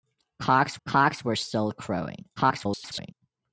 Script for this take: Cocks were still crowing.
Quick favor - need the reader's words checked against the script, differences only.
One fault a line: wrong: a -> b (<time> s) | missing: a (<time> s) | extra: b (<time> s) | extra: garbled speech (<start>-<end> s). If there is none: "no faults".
extra: cocks (0.9 s)
extra: garbled speech (2.4-3.1 s)